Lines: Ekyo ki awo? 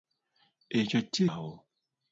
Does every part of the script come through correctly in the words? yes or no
yes